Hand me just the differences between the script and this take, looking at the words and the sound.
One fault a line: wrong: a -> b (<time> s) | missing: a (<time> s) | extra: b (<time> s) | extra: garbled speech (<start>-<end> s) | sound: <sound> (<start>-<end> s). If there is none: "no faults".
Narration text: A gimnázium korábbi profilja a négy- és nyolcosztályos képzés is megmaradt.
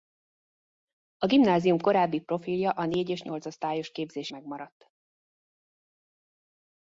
missing: is (4.3 s)